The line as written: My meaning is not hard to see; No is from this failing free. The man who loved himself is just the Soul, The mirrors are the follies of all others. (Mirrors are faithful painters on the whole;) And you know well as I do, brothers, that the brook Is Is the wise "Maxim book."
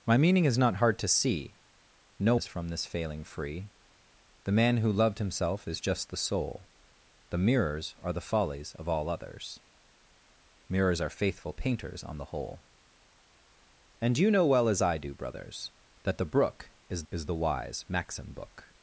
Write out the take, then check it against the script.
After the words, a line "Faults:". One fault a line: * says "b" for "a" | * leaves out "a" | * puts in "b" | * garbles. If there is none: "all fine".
My meaning is not hard to see; No is from this failing free. The man who loved himself is just the Soul, The mirrors are the follies of all others. (Mirrors are faithful painters on the whole;) And you know well as I do, brothers, that the brook Is Is the wise "Maxim book."
Faults:
all fine